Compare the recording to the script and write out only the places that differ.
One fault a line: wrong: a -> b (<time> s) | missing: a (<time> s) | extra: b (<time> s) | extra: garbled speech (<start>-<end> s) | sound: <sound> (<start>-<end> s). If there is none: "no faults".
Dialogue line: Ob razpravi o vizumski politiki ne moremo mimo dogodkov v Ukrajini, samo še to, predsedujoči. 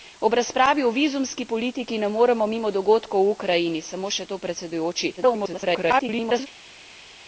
extra: garbled speech (5.2-6.5 s)